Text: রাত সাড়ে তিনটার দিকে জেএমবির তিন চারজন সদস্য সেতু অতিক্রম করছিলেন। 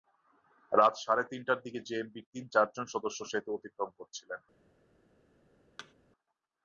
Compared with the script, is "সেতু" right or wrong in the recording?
right